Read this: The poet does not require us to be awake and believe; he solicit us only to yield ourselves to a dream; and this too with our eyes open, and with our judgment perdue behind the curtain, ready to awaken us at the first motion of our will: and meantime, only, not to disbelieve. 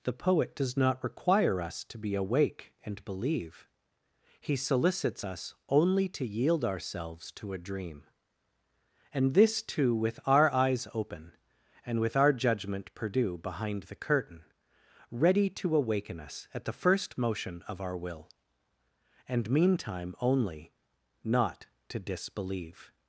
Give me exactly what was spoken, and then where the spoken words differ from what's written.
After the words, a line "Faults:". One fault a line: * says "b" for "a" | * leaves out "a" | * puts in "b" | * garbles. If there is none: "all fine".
The poet does not require us to be awake and believe; he solicits us only to yield ourselves to a dream; and this too with our eyes open, and with our judgment perdue behind the curtain, ready to awaken us at the first motion of our will: and meantime, only, not to disbelieve.
Faults:
* says "solicits" for "solicit"